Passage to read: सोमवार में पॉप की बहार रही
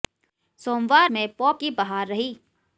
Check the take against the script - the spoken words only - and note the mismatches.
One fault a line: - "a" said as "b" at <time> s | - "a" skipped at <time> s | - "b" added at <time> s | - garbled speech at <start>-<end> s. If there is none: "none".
none